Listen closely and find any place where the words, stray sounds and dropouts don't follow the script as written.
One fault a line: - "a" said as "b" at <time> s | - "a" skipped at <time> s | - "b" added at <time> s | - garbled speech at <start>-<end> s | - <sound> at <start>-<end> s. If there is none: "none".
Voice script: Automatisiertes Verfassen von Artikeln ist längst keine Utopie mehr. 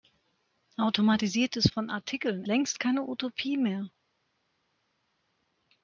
- "Verfassen" skipped at 1.7 s
- "ist" skipped at 2.4 s